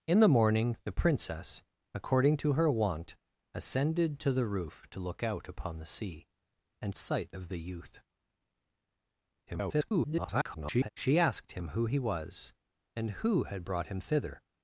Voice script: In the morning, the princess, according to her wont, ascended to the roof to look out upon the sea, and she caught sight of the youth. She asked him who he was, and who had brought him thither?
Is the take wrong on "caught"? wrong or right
wrong